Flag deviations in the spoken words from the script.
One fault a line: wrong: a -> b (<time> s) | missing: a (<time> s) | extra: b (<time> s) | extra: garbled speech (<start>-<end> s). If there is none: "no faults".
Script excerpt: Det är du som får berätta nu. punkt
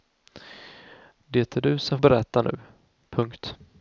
missing: får (2.0 s)